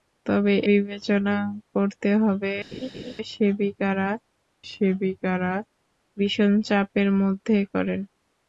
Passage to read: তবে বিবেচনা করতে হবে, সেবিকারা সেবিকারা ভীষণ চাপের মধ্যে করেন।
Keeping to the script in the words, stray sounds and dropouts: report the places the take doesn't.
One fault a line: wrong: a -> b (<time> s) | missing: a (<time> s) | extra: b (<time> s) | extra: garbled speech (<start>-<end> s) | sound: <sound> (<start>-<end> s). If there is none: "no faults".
sound: laugh (2.7-3.1 s)